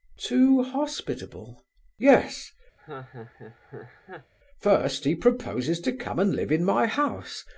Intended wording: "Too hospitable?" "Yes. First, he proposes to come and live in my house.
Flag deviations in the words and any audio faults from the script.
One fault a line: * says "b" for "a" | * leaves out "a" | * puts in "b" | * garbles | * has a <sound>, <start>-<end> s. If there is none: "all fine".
* has a laugh, 2.8-4.3 s